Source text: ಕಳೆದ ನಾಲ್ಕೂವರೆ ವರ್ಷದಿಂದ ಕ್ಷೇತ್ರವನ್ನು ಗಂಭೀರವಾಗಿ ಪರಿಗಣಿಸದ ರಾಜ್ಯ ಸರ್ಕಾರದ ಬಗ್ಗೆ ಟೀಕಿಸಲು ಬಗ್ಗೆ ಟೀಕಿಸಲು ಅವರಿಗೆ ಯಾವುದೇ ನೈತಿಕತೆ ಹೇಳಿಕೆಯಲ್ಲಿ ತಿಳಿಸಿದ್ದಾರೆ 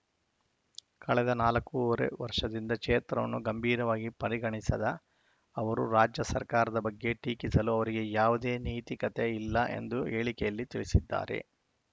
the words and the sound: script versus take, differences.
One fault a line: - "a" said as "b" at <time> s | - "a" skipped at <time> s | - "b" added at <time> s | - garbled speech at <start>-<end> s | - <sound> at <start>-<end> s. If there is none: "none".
- "ಅವರು" added at 5.5 s
- "ಬಗ್ಗೆ ಟೀಕಿಸಲು" skipped at 7.7 s
- "ಇಲ್ಲ ಎಂದು" added at 9.4 s